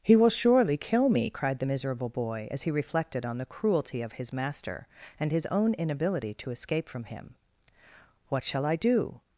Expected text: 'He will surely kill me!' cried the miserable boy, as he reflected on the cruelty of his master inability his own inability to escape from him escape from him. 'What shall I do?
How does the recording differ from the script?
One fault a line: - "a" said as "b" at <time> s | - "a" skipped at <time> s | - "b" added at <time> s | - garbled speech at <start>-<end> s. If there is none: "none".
- "inability" said as "and" at 5.2 s
- "escape from him" skipped at 7.3 s